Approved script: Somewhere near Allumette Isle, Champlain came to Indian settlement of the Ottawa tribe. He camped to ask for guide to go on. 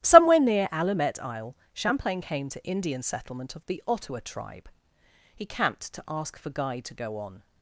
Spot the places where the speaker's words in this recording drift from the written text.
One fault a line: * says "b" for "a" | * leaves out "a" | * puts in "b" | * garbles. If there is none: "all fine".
all fine